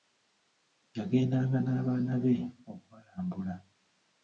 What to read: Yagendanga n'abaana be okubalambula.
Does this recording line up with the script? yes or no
yes